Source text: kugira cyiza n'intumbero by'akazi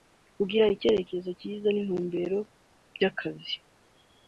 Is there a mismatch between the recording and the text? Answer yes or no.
yes